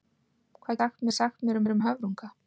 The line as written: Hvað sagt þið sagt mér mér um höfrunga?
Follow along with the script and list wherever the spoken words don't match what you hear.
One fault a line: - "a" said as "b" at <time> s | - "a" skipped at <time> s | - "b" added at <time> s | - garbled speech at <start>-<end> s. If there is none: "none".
none